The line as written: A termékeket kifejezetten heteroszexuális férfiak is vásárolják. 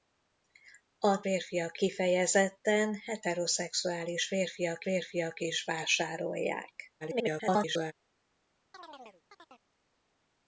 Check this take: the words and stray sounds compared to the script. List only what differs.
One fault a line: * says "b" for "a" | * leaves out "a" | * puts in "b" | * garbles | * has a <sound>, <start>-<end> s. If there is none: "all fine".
* says "férfiak" for "termékeket"
* puts in "férfiak"
* garbles
* has a chirp, 8.7-9.7 s